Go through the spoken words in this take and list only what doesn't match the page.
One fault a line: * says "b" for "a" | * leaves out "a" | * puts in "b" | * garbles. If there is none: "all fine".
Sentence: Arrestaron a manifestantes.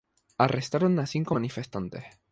* puts in "cinco"